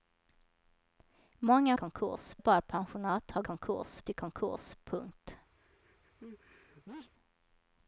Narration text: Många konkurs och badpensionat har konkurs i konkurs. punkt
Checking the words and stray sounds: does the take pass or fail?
fail